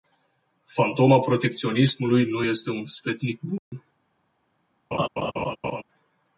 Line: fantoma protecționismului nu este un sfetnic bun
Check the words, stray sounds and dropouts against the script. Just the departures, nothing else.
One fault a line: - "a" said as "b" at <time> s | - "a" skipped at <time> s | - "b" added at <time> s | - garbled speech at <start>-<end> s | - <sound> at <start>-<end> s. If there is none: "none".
- dropout at 3.6-3.7 s
- laugh at 4.9-5.8 s